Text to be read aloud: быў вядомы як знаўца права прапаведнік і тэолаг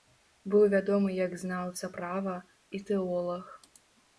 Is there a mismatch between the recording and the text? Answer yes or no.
yes